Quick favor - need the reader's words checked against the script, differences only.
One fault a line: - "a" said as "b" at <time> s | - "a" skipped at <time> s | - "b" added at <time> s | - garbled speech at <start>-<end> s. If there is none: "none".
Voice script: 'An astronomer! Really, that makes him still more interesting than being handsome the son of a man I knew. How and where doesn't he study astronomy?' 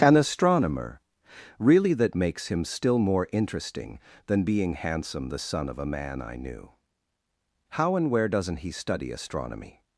none